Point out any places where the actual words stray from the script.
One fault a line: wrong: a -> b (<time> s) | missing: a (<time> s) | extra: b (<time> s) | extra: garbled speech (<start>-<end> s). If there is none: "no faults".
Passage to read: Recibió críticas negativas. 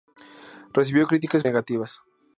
no faults